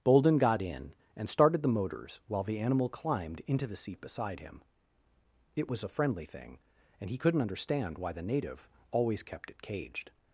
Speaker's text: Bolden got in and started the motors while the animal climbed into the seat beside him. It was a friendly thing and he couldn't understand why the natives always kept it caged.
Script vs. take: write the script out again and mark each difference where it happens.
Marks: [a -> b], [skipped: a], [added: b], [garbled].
Bolden got in and started the motors while the animal climbed into the seat beside him. It was a friendly thing and he couldn't understand why the [natives -> native] always kept it caged.